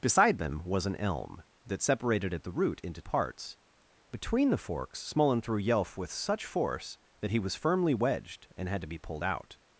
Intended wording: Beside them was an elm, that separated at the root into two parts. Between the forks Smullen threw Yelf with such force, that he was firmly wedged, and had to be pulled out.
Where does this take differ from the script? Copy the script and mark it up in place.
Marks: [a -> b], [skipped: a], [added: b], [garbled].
Beside them was an elm, that separated at the root into [skipped: two] parts. Between the forks Smullen threw Yelf with such force, that he was firmly wedged, and had to be pulled out.